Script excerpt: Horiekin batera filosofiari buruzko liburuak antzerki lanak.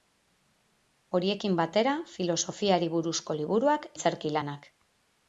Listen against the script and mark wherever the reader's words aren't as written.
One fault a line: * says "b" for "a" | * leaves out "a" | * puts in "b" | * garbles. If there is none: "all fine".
all fine